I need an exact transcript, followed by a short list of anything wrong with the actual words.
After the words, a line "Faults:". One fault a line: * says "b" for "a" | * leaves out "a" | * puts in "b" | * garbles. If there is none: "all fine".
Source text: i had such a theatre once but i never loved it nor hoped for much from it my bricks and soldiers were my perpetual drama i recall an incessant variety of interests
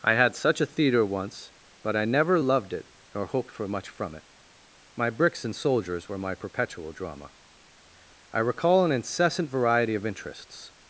i had such a theatre once but i never loved it nor hoped for much from it my bricks and soldiers were my perpetual drama i recall an incessant variety of interests
Faults:
all fine